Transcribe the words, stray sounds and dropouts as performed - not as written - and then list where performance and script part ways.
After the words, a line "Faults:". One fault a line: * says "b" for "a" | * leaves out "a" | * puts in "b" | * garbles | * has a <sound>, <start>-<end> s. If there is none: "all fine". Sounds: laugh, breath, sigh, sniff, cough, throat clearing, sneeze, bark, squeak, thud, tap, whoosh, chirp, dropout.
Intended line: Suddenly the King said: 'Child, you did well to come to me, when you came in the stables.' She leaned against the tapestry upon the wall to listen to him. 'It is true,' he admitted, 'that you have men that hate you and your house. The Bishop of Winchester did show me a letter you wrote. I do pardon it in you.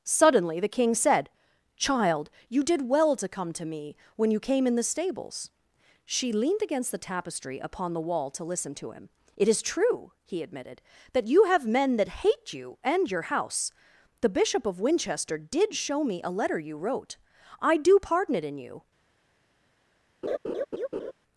Suddenly the King said: 'Child, you did well to come to me, when you came in the stables.' She leaned against the tapestry upon the wall to listen to him. 'It is true,' he admitted, 'that you have men that hate you and your house. The Bishop of Winchester did show me a letter you wrote. I do pardon it in you.
Faults:
* has a laugh, 20.2-21.1 s